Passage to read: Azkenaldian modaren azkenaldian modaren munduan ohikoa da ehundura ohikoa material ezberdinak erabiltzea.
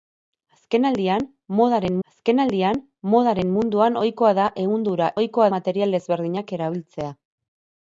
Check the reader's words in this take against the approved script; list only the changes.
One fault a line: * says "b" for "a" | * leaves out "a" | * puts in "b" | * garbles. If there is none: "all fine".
all fine